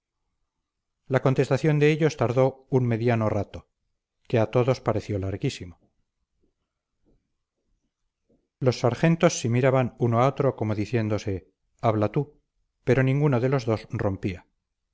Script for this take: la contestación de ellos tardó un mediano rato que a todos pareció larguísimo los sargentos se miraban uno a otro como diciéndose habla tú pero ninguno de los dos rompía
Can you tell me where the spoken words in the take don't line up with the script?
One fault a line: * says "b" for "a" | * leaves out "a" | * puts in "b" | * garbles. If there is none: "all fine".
all fine